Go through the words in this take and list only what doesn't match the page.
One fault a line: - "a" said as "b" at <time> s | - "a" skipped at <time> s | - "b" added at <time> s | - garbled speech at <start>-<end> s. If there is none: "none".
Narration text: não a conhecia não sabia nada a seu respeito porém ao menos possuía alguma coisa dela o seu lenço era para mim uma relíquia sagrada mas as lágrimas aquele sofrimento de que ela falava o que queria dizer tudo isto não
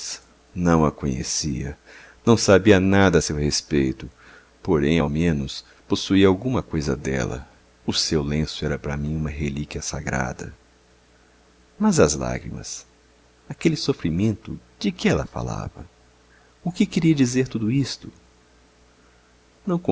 none